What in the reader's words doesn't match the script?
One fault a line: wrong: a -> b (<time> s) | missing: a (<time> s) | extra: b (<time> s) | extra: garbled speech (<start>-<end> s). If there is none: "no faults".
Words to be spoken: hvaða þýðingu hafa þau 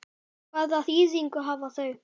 no faults